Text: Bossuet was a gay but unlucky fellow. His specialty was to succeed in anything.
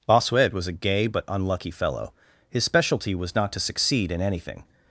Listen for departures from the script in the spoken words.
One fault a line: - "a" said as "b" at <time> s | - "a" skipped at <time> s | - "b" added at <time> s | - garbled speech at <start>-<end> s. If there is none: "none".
- "not" added at 3.4 s